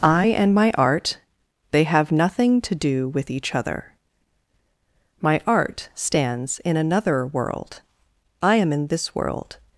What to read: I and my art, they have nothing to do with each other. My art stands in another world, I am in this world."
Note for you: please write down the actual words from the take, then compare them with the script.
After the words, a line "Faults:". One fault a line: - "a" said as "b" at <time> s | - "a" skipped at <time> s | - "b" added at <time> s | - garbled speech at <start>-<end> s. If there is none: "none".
I and my art, they have nothing to do with each other. My art stands in another world, I am in this world."
Faults:
none